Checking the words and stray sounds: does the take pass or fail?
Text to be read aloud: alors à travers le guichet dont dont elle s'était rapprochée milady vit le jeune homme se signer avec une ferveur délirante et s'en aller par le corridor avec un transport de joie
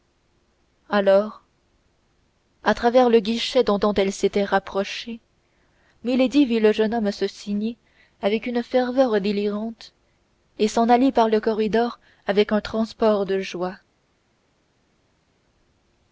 pass